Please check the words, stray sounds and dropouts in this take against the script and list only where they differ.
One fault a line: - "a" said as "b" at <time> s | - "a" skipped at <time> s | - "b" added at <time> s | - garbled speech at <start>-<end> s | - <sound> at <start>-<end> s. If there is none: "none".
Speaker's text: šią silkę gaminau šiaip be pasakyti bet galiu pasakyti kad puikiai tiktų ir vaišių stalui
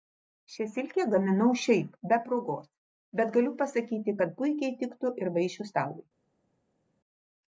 - "pasakyti" said as "progos" at 2.3 s